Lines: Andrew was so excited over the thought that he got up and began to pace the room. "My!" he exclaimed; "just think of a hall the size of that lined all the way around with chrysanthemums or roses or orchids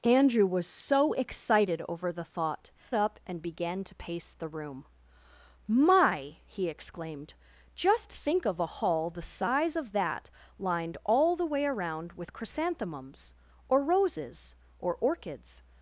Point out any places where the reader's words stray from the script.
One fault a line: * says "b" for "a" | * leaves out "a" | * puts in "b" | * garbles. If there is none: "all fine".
* leaves out "that he got"